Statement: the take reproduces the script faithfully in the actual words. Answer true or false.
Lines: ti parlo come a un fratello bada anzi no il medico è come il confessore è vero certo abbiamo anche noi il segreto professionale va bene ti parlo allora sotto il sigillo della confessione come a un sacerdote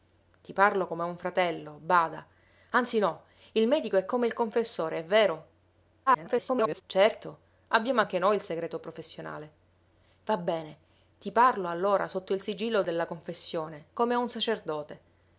false